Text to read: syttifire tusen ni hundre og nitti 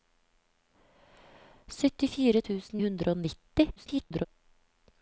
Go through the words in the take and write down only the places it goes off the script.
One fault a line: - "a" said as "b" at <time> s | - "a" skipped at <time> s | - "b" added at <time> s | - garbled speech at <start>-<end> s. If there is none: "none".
- "ni" skipped at 2.8 s
- garbled speech at 3.8-4.3 s